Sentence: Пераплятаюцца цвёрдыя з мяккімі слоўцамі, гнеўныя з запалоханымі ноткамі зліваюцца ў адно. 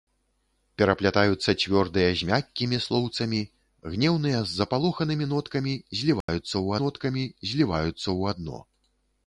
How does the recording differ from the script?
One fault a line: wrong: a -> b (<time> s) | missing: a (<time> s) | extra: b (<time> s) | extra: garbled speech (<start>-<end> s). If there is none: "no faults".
extra: ноткамі зліваюцца ў (6.8 s)